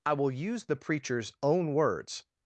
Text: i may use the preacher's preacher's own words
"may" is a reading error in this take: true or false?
true